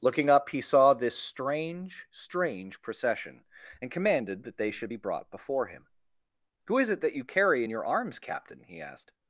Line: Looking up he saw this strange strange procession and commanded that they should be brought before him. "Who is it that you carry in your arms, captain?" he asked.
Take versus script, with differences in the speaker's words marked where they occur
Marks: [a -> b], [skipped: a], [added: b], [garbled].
Looking up he saw this strange strange procession and commanded that they should be brought before him. "Who is it that you carry in your arms, captain?" he asked.